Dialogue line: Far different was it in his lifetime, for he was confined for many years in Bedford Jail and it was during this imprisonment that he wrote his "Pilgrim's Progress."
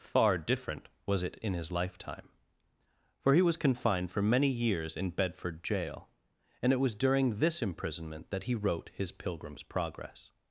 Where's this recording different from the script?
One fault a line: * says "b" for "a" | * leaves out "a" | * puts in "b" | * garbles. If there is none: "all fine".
all fine